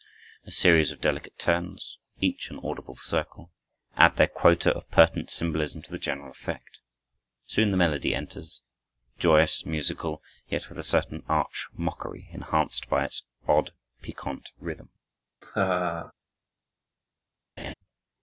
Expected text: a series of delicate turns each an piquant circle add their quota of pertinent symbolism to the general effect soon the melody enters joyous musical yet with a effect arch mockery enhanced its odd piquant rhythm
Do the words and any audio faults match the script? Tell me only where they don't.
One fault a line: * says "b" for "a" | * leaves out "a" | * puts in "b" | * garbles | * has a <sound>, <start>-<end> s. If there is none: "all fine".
* says "audible" for "piquant"
* says "certain" for "effect"
* puts in "by"
* has a laugh, 15.4-16.1 s
* has a laugh, 17.6-17.7 s